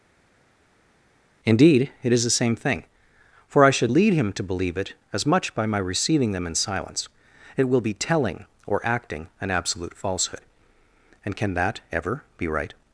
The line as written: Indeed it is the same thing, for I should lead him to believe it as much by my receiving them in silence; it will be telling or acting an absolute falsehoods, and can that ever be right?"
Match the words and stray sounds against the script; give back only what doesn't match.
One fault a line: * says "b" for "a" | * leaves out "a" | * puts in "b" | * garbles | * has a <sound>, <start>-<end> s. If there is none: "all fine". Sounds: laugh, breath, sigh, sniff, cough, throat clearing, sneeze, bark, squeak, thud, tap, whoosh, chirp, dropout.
* says "falsehood" for "falsehoods"